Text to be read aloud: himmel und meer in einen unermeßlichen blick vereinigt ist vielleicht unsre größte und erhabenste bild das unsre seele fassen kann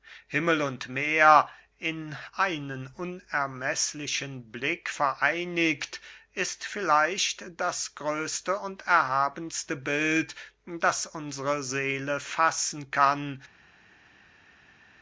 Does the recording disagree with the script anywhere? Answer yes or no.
yes